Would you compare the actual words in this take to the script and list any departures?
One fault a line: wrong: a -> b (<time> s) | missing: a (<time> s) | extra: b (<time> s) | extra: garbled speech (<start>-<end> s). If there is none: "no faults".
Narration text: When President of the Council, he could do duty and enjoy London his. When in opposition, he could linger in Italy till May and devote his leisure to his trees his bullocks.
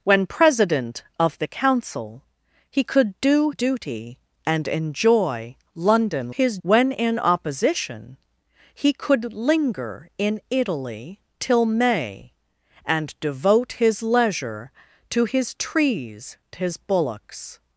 no faults